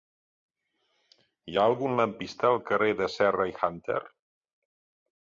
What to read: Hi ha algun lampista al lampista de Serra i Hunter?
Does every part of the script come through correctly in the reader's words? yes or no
no